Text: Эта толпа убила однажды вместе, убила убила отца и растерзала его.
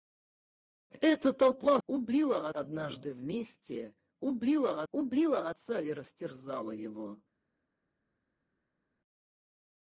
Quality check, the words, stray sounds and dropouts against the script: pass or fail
pass